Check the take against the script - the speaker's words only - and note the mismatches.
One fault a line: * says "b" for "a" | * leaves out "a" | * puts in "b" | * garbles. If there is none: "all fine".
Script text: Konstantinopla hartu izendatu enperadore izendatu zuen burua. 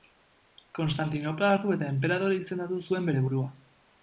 * says "eta" for "izendatu"
* puts in "bere"